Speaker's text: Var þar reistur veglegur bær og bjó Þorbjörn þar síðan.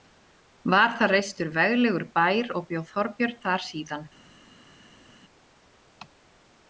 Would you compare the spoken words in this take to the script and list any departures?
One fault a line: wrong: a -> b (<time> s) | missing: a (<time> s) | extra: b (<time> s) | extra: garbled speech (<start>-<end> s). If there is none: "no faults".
no faults